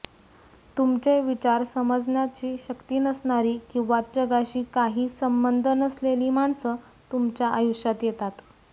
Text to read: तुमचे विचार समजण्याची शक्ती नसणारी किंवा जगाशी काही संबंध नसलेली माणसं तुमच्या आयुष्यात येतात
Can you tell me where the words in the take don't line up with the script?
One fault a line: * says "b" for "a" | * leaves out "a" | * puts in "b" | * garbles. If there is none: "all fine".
all fine